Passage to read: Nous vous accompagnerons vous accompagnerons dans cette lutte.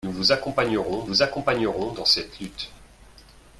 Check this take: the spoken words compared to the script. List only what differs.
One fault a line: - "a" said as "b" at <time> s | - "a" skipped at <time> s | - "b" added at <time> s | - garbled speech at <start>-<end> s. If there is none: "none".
none